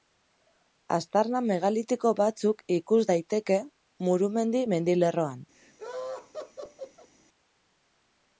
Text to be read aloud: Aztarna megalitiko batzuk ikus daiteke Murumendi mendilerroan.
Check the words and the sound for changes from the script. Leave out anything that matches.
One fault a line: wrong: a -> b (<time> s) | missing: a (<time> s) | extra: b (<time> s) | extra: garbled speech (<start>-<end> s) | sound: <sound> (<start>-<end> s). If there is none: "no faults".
sound: laugh (5.5-7.1 s)